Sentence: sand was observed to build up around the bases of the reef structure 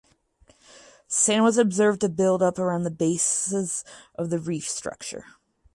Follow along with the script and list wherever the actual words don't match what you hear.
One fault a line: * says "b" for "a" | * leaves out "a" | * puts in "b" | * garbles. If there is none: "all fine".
all fine